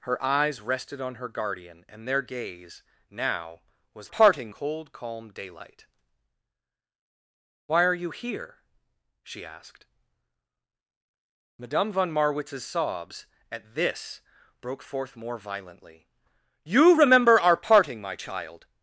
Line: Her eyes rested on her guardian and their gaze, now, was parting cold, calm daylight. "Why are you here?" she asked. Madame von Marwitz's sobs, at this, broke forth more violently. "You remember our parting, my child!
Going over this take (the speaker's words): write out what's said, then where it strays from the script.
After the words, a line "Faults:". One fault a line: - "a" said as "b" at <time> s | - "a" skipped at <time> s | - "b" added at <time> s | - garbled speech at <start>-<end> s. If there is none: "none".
Her eyes rested on her guardian and their gaze, now, was parting cold, calm daylight. "Why are you here?" she asked. Madame von Marwitz's sobs, at this, broke forth more violently. "You remember our parting, my child!
Faults:
none